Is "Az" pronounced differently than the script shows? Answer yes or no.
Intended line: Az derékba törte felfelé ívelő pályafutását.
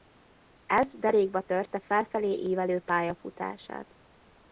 yes